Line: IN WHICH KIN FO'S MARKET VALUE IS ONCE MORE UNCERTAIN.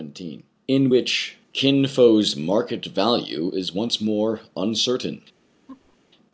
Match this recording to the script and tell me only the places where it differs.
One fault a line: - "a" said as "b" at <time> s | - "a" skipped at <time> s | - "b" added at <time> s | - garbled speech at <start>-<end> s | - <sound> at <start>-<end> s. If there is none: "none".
- laugh at 5.7-6.0 s